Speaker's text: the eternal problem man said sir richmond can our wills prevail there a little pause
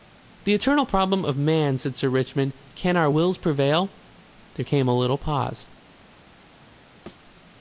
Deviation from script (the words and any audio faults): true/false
true